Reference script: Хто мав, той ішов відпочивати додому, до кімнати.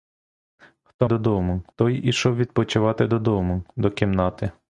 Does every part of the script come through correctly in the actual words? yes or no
no